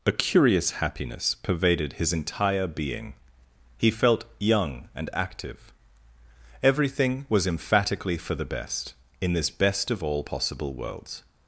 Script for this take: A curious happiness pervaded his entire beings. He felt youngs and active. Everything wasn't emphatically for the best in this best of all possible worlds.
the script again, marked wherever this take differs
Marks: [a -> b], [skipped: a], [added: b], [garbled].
A curious happiness pervaded his entire [beings. -> being] He felt [youngs -> young] and active. Everything [wasn't -> was] emphatically for the best in this best of all possible worlds.